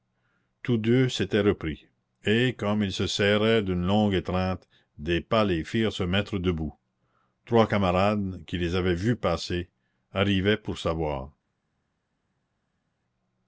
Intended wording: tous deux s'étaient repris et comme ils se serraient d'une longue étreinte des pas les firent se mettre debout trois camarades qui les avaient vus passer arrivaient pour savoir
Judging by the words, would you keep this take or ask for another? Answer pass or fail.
pass